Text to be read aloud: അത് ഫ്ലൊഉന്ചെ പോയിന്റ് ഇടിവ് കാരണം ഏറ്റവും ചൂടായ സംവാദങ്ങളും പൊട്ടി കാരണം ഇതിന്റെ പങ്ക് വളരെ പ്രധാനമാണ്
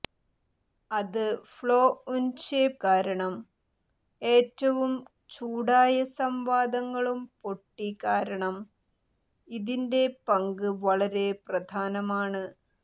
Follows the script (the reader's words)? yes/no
no